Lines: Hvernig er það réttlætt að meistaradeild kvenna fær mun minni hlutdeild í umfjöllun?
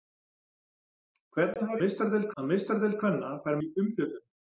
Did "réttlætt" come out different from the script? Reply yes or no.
yes